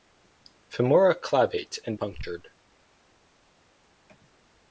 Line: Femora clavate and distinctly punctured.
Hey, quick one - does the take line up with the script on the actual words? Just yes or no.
no